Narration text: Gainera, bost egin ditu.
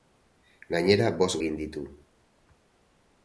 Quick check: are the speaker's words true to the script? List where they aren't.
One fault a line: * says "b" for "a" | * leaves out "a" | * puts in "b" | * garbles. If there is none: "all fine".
all fine